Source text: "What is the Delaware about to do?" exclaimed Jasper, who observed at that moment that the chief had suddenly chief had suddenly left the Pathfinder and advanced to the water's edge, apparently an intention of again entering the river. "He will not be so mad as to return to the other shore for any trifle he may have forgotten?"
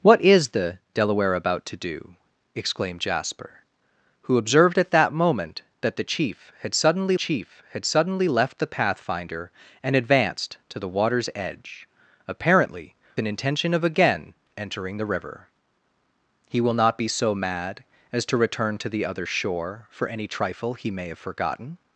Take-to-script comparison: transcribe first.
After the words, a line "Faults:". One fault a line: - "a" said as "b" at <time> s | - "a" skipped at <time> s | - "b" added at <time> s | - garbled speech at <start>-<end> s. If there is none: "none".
"What is the Delaware about to do?" exclaimed Jasper, who observed at that moment that the chief had suddenly chief had suddenly left the Pathfinder and advanced to the water's edge, apparently an intention of again entering the river. "He will not be so mad as to return to the other shore for any trifle he may have forgotten?"
Faults:
none